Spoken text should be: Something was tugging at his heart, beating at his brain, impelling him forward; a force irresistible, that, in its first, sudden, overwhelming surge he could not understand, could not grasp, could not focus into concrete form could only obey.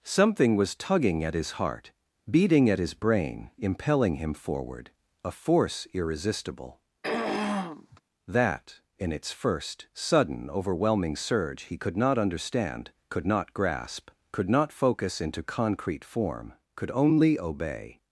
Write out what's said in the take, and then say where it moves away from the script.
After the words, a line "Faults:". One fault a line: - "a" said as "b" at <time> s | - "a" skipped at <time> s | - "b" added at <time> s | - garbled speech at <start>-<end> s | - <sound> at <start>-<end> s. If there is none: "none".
Something was tugging at his heart, beating at his brain, impelling him forward; a force irresistible, that, in its first, sudden, overwhelming surge he could not understand, could not grasp, could not focus into concrete form could only obey.
Faults:
- throat clearing at 7.0-8.0 s